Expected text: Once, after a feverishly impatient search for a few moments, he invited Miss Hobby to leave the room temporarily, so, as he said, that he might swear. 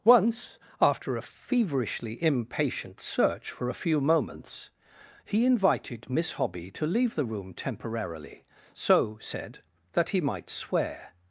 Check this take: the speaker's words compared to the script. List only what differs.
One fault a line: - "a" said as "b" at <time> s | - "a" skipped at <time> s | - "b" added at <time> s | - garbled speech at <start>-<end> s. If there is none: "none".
- "as he" skipped at 9.2 s